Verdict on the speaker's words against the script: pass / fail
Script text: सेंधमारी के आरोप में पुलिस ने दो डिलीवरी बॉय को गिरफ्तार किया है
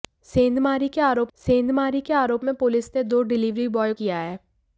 fail